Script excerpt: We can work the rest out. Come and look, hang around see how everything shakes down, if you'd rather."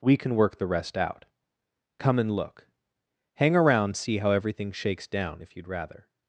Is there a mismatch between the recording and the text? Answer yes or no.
no